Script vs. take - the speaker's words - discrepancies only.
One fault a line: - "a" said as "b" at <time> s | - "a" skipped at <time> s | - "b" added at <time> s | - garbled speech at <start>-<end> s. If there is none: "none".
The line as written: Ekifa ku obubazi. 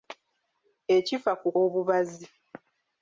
none